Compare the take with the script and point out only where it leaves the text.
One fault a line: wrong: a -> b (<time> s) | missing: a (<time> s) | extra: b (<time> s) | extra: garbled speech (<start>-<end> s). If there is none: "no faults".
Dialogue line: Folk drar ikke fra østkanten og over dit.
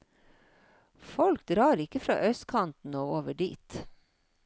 no faults